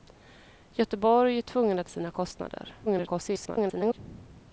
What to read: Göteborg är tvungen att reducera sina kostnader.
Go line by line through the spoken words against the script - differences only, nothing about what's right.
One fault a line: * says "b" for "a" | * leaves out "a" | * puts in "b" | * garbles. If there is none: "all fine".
* leaves out "reducera"
* garbles